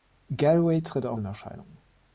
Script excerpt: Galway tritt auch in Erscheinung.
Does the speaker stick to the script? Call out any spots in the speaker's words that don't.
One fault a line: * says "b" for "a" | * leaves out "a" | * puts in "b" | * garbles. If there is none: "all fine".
all fine